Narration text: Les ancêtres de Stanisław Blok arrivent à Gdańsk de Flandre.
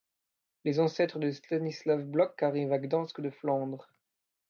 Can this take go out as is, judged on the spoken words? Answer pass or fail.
pass